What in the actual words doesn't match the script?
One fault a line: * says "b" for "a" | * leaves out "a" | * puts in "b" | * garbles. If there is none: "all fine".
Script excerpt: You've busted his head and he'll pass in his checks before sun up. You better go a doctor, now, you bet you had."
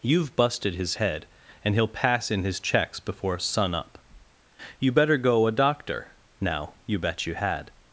all fine